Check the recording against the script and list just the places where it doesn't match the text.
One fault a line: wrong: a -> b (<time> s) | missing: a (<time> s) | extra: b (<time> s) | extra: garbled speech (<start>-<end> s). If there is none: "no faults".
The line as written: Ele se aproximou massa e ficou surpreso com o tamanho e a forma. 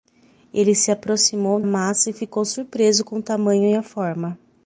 no faults